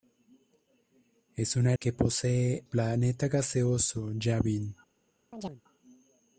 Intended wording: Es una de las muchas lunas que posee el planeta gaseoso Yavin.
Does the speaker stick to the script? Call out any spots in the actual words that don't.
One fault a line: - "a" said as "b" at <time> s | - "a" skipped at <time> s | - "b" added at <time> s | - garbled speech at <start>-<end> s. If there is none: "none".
- "las muchas lunas" skipped at 1.8 s
- "el" skipped at 2.6 s